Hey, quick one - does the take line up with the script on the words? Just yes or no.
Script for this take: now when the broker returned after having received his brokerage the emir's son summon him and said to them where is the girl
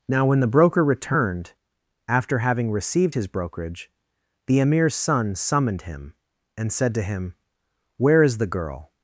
no